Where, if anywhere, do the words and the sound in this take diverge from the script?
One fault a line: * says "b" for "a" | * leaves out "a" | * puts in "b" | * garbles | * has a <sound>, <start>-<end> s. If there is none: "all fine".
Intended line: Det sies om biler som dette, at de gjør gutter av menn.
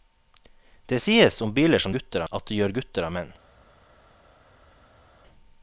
* says "gutter" for "dette"